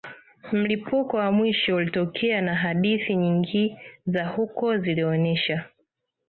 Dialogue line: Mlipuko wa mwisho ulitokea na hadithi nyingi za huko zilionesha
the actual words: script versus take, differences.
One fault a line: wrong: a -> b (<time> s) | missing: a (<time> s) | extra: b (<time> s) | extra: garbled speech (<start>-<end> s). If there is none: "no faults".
no faults